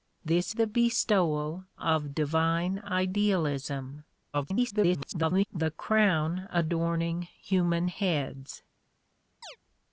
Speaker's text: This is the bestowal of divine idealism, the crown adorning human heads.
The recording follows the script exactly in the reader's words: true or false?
false